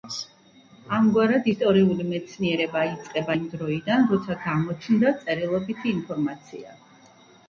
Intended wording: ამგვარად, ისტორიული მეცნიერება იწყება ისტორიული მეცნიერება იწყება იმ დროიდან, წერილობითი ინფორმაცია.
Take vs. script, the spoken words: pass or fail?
fail